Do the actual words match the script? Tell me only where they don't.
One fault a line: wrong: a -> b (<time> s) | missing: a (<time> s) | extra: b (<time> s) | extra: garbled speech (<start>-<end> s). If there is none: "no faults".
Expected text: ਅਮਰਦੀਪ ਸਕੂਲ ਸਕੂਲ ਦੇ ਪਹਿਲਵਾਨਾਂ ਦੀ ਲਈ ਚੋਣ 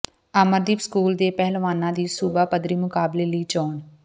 missing: ਸਕੂਲ (1.1 s)
extra: ਸੂਬਾ ਪੱਧਰੀ ਮੁਕਾਬਲੇ (2.1 s)